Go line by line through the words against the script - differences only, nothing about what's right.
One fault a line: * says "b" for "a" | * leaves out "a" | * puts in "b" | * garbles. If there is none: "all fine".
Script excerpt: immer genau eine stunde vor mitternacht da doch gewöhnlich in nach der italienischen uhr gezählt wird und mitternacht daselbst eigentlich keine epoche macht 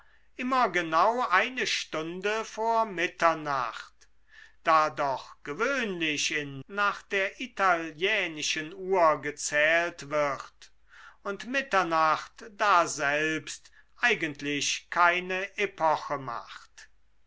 all fine